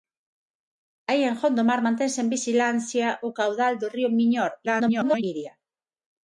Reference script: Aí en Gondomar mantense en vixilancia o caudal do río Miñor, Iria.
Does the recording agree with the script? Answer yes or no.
no